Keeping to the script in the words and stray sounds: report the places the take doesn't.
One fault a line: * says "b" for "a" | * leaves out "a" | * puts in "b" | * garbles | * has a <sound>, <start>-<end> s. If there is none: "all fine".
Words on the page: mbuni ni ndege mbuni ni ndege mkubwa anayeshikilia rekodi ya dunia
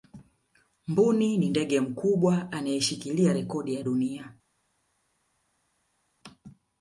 * leaves out "mbuni ni ndege"